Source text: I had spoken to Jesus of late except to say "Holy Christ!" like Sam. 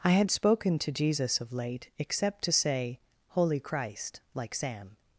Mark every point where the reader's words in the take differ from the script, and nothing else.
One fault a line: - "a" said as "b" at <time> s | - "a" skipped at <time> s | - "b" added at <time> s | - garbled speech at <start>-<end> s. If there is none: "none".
none